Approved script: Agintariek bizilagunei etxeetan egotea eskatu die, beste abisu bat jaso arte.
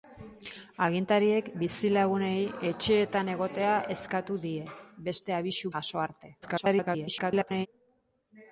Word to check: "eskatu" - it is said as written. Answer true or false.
true